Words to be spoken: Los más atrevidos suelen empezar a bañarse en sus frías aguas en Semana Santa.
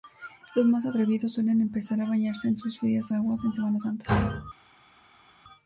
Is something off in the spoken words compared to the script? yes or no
no